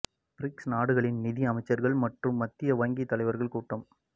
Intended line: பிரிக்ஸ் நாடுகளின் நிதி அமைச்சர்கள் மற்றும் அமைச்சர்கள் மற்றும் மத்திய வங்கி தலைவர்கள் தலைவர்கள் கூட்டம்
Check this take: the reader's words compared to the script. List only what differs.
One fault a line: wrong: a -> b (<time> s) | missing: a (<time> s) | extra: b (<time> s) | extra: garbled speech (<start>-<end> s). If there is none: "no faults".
missing: அமைச்சர்கள் மற்றும் (2.4 s)
missing: தலைவர்கள் (3.5 s)